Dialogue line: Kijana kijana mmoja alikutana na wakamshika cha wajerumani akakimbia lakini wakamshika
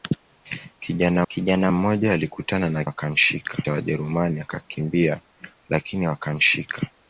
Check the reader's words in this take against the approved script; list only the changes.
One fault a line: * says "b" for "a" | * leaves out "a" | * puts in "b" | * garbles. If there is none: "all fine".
all fine